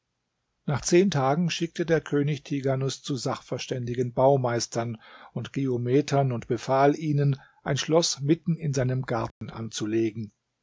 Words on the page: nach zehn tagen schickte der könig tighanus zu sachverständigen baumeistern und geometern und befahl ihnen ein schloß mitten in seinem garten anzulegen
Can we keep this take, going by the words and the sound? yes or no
no